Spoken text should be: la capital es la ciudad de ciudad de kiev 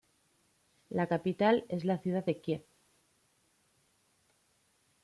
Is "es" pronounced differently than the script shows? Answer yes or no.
no